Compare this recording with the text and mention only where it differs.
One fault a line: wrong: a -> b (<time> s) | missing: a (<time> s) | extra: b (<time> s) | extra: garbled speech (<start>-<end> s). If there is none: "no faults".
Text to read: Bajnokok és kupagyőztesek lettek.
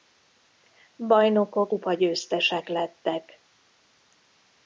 missing: és (1.7 s)